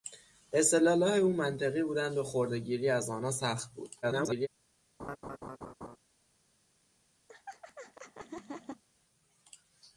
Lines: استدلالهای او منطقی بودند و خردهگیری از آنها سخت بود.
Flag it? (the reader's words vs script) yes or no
yes